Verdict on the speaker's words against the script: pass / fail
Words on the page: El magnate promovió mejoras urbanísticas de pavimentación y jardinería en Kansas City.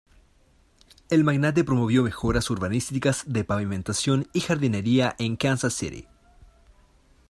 pass